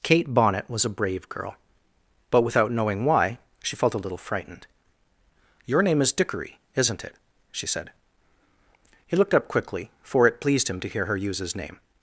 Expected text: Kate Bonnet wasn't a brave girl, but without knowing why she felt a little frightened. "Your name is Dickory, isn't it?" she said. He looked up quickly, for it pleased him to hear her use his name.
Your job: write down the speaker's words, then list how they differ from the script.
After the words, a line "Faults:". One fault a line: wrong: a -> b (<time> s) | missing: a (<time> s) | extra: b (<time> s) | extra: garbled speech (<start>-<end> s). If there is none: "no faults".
Kate Bonnet was a brave girl, but without knowing why she felt a little frightened. "Your name is Dickory, isn't it?" she said. He looked up quickly, for it pleased him to hear her use his name.
Faults:
wrong: wasn't -> was (0.7 s)